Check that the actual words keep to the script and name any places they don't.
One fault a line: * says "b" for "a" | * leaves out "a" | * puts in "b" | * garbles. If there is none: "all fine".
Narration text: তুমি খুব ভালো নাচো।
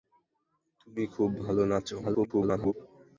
* garbles